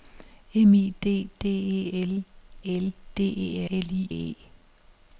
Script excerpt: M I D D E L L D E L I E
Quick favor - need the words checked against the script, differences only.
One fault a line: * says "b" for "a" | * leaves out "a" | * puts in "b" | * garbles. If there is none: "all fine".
all fine